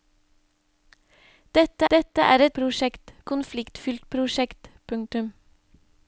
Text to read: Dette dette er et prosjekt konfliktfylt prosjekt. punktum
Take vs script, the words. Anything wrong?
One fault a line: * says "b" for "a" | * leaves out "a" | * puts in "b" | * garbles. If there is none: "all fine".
all fine